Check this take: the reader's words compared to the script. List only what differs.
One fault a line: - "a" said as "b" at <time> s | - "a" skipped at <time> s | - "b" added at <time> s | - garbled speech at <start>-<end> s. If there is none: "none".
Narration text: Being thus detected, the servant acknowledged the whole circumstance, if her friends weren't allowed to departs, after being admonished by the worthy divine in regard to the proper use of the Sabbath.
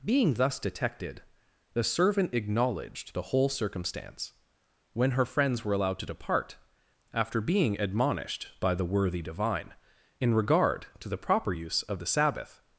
- "if" said as "when" at 4.9 s
- "weren't" said as "were" at 5.6 s
- "departs" said as "depart" at 6.1 s